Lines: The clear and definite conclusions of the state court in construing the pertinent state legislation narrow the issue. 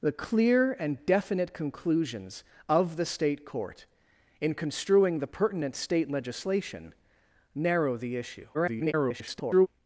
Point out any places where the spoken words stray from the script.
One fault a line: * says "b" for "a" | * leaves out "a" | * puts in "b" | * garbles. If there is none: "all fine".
* garbles